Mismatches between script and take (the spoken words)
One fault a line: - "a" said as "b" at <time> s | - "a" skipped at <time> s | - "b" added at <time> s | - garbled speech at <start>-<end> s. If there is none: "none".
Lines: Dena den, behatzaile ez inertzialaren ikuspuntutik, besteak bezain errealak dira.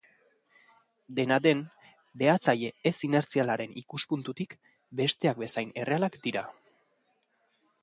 none